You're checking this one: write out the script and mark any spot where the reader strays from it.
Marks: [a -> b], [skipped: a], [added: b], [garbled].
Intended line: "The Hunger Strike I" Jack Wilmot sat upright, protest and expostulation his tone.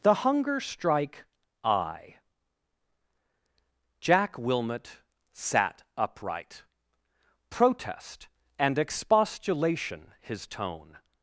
"The Hunger Strike I" Jack Wilmot sat upright, protest and expostulation his tone.